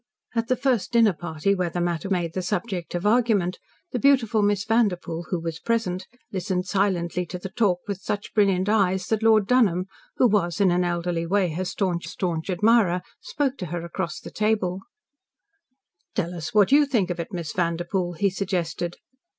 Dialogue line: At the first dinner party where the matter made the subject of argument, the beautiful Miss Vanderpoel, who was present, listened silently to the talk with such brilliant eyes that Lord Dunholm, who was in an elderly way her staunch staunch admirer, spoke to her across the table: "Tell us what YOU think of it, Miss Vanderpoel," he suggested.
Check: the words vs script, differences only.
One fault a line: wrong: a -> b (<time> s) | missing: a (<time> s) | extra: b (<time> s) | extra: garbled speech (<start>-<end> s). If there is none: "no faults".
no faults